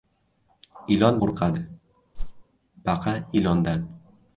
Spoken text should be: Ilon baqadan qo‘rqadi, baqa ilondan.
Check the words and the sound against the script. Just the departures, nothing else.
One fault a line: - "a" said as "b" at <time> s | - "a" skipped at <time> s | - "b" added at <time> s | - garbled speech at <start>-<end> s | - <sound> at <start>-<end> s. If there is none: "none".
- "baqadan" skipped at 1.2 s
- whoosh at 2.1-2.4 s